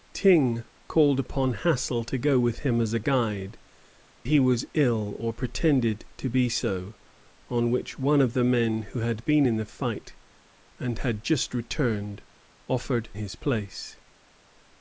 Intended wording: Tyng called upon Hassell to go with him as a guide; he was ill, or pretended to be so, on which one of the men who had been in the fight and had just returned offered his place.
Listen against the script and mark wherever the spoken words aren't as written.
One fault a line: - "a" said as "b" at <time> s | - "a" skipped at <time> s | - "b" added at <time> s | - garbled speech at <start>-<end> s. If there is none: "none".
none